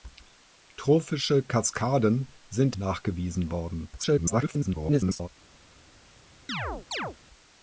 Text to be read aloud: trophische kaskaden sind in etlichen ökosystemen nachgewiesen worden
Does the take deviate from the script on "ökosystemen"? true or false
true